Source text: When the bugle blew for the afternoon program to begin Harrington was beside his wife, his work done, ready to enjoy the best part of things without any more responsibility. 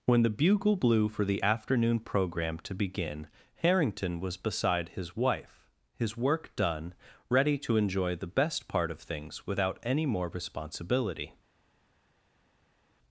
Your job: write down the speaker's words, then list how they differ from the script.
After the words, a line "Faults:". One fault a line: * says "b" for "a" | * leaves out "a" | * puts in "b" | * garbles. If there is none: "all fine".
When the bugle blew for the afternoon program to begin Harrington was beside his wife, his work done, ready to enjoy the best part of things without any more responsibility.
Faults:
all fine